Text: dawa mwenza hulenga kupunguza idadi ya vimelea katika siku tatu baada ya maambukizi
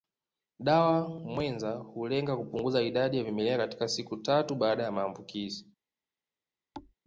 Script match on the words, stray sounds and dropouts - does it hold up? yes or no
no